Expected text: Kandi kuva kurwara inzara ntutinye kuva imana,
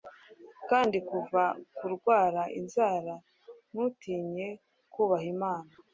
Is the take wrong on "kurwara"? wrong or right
right